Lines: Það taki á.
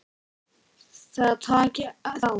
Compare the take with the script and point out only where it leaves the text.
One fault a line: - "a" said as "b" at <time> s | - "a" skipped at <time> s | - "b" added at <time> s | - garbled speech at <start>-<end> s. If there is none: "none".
none